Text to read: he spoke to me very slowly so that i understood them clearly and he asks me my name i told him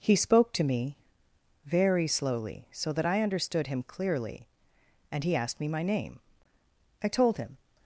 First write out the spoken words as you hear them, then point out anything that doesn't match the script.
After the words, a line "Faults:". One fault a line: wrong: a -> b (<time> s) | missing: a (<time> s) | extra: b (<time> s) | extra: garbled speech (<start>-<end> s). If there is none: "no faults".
he spoke to me very slowly so that i understood him clearly and he asked me my name i told him
Faults:
wrong: them -> him (3.7 s)
wrong: asks -> asked (5.3 s)